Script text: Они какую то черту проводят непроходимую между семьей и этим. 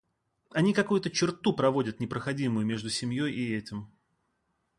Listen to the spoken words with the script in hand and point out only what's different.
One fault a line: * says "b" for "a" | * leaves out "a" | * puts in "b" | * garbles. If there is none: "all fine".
all fine